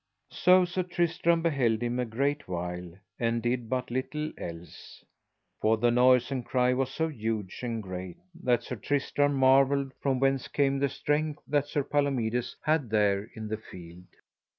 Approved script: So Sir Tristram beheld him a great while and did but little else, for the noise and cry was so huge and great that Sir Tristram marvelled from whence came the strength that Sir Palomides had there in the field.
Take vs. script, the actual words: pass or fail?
pass